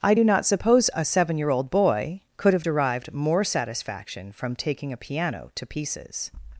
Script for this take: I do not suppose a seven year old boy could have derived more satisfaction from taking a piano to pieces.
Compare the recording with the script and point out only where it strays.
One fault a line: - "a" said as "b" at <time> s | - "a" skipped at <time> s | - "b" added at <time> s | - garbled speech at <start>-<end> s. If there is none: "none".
none